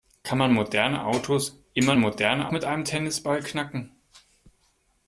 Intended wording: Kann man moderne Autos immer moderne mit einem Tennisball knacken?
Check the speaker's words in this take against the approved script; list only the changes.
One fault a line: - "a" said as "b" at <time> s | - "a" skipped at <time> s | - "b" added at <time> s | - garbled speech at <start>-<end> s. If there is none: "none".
none